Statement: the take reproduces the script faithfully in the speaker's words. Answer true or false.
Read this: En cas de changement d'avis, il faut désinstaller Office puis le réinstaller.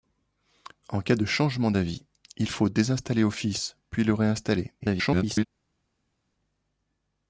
false